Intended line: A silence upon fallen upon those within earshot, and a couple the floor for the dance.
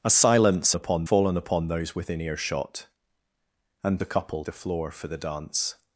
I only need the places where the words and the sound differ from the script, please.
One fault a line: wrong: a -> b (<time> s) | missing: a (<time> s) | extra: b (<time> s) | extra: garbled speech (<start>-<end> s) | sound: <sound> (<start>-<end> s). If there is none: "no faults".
no faults